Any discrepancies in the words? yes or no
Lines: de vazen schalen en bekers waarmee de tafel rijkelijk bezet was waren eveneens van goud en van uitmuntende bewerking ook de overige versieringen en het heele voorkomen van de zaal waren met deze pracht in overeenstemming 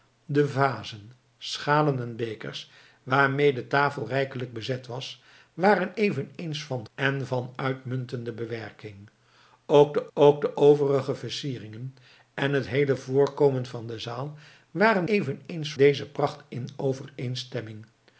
yes